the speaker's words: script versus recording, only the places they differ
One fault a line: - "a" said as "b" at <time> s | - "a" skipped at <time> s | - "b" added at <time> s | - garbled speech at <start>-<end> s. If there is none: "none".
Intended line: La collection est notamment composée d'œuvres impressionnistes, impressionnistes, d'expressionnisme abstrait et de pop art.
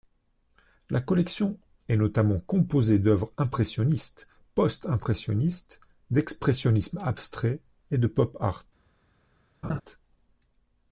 - "post" added at 4.5 s